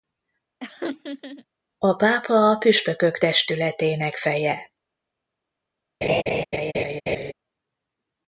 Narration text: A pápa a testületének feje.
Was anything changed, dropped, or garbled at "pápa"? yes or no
no